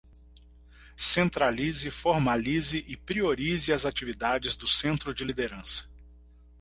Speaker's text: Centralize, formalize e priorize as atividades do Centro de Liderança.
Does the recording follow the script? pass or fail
pass